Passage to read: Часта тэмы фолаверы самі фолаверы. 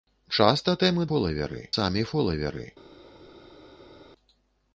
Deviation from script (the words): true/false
false